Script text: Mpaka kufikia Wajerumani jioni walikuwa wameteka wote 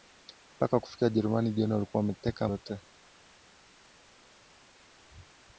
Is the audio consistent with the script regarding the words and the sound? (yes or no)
yes